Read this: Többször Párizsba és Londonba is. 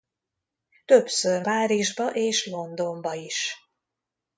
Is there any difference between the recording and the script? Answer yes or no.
no